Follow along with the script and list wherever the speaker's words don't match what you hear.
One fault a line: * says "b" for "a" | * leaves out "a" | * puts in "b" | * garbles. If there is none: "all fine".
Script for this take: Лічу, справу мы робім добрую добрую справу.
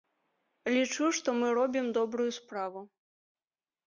* says "што" for "справу"
* leaves out "добрую"